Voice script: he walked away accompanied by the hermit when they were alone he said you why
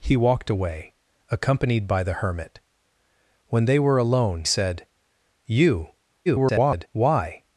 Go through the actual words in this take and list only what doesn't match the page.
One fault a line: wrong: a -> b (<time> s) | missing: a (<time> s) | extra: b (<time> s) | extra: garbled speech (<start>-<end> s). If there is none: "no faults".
missing: he (4.5 s)
extra: garbled speech (6.3-6.9 s)